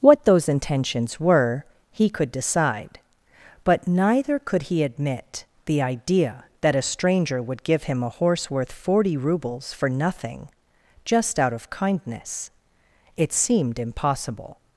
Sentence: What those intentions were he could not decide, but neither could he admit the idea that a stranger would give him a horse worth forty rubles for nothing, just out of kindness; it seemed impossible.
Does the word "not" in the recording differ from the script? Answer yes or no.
yes